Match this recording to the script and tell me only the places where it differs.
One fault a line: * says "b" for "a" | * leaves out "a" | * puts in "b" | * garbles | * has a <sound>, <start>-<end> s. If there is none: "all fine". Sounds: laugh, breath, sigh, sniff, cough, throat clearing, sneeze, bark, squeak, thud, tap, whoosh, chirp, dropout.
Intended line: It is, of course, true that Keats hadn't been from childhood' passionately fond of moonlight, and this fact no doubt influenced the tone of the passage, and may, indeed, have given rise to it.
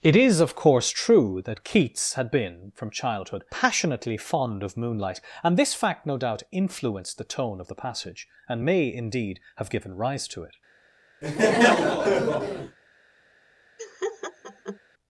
* says "had" for "hadn't"
* has a laugh, 11.2-12.8 s
* has a laugh, 13.8-14.8 s